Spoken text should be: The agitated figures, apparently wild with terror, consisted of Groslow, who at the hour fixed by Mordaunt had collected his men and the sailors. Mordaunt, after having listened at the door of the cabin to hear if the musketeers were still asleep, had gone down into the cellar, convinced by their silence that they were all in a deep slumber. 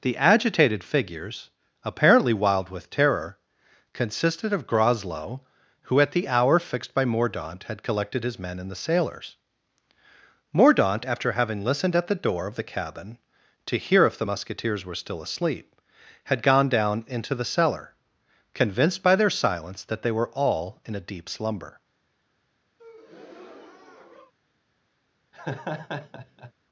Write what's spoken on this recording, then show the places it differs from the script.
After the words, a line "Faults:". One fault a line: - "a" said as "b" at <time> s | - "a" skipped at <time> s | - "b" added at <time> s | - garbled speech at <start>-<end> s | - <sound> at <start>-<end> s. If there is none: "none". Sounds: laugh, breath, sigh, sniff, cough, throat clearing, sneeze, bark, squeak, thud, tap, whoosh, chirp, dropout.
The agitated figures, apparently wild with terror, consisted of Groslow, who at the hour fixed by Mordaunt had collected his men and the sailors. Mordaunt, after having listened at the door of the cabin to hear if the musketeers were still asleep, had gone down into the cellar, convinced by their silence that they were all in a deep slumber.
Faults:
- breath at 22.8-24.3 s
- laugh at 25.3-26.5 s